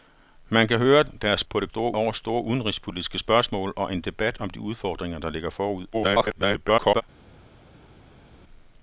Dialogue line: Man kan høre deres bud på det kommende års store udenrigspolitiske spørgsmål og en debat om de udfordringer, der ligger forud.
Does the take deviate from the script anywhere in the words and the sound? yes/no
yes